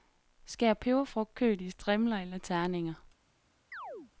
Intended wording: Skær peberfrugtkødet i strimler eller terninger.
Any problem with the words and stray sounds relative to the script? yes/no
yes